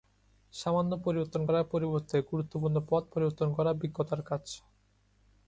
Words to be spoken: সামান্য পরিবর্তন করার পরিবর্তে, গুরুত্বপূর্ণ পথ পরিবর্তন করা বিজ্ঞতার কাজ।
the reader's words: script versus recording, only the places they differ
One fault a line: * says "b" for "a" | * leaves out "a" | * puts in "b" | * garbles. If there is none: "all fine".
all fine